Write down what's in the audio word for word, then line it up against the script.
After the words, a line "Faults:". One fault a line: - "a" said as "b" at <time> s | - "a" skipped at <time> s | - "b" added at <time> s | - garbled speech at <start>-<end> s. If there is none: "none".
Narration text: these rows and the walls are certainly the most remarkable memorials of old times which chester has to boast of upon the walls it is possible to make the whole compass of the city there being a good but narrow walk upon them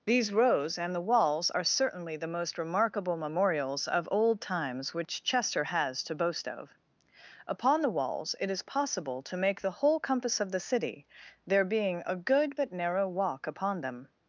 these rows and the walls are certainly the most remarkable memorials of old times which chester has to boast of upon the walls it is possible to make the whole compass of the city there being a good but narrow walk upon them
Faults:
none